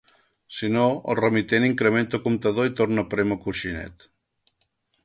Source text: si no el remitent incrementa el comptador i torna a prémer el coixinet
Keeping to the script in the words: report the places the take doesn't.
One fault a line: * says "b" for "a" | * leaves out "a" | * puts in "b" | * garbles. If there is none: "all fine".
all fine